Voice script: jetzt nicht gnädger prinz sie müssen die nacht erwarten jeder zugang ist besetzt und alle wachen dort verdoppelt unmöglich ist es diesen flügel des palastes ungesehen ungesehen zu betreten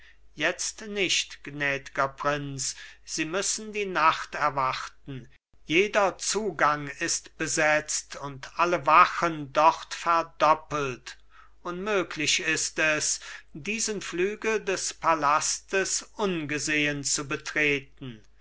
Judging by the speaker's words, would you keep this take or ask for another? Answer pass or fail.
fail